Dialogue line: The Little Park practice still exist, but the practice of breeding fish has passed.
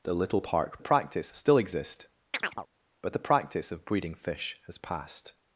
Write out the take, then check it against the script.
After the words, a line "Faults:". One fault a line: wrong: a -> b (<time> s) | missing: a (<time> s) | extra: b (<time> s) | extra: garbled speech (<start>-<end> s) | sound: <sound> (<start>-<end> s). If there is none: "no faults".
The Little Park practice still exist, but the practice of breeding fish has passed.
Faults:
sound: chirp (2.3-2.7 s)